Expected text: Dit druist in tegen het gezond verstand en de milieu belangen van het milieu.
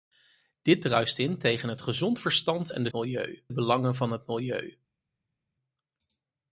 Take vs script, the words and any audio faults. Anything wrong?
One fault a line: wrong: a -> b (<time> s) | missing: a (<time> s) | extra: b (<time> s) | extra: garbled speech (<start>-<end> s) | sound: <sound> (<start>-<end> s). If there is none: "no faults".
no faults